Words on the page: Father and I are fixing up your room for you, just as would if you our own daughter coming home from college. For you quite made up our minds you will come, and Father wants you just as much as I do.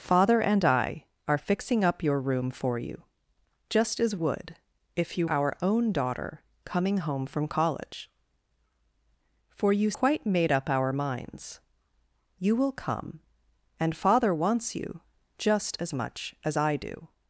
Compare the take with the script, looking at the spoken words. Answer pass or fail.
pass